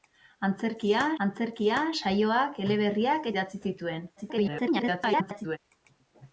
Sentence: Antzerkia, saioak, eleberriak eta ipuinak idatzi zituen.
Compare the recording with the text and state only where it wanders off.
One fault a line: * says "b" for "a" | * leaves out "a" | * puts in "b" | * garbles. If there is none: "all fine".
* puts in "antzerkia"
* leaves out "eta ipuinak"
* garbles